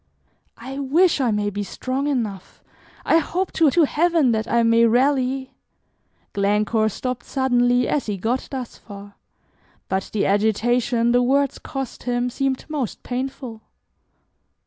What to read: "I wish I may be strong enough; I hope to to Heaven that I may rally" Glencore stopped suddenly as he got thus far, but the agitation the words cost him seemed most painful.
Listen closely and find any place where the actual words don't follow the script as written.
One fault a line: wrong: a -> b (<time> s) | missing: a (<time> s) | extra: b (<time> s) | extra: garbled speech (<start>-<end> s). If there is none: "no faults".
no faults